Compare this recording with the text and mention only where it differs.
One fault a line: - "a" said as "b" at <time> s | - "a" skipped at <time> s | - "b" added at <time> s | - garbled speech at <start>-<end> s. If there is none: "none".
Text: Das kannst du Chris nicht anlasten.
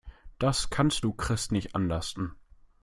none